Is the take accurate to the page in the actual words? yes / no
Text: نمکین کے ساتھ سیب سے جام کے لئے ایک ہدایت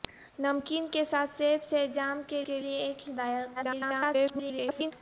no